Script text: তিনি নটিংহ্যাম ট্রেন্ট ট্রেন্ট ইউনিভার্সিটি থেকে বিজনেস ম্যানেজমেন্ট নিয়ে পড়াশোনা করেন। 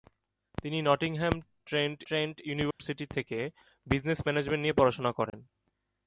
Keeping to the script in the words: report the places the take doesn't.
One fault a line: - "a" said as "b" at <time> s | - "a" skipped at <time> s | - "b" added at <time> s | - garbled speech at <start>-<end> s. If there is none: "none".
none